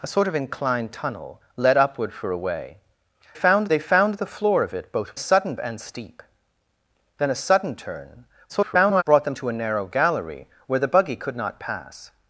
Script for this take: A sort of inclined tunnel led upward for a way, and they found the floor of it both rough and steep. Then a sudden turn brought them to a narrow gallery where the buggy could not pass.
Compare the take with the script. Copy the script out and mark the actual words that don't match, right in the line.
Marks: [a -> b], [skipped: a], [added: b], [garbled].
A sort of inclined tunnel led upward for a way, [and -> found] they found the floor of it both [rough -> sudden] and steep. Then a sudden turn [garbled] brought them to a narrow gallery where the buggy could not pass.